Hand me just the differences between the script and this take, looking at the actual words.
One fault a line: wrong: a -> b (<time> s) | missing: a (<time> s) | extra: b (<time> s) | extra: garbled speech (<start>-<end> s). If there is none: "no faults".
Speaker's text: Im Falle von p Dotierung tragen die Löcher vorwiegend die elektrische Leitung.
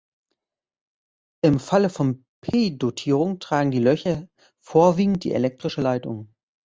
no faults